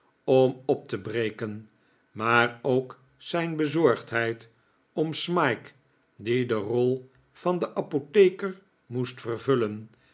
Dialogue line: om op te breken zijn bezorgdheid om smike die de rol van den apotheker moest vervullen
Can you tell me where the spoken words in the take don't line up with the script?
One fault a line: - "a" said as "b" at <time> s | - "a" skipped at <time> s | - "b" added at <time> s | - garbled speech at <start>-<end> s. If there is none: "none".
- "maar ook" added at 2.1 s